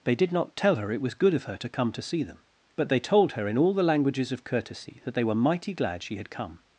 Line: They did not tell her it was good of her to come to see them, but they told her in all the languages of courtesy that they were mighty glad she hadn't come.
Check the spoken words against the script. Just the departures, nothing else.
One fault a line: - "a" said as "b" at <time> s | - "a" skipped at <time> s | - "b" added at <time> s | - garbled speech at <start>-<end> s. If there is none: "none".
- "hadn't" said as "had" at 6.2 s